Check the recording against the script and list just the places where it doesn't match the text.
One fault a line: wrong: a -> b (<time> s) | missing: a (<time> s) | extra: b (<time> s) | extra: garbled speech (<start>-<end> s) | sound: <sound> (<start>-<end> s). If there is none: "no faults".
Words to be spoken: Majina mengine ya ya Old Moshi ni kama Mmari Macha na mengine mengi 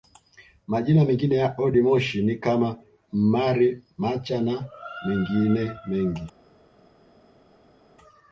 missing: ya (1.6 s)